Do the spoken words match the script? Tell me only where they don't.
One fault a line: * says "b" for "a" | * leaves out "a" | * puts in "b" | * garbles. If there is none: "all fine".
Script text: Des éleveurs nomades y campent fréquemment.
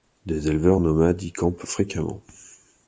all fine